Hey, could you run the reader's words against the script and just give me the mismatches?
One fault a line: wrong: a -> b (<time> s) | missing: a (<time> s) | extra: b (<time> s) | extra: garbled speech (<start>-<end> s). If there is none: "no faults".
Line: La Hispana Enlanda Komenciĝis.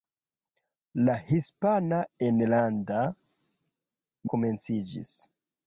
no faults